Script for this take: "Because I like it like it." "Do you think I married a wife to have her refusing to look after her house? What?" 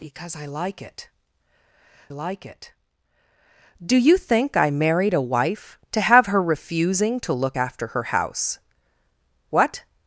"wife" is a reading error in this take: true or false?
false